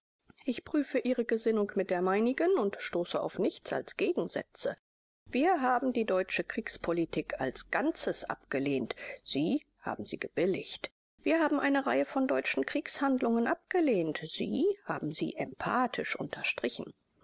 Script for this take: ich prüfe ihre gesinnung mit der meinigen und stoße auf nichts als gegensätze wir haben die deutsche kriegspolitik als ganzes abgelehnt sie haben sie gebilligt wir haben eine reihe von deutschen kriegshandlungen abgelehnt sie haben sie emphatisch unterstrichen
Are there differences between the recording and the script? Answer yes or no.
no